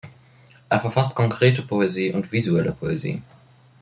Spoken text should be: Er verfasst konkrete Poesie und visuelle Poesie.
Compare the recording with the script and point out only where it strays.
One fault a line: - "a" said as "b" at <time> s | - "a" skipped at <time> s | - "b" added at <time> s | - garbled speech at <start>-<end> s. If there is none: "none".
none